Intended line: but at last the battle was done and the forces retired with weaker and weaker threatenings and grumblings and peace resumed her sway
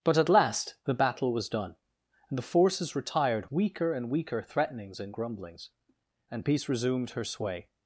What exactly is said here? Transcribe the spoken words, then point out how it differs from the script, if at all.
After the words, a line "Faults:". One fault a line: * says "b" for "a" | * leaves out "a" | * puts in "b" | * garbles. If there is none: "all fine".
but at last the battle was done and the forces retired weaker and weaker threatenings and grumblings and peace resumed her sway
Faults:
* leaves out "with"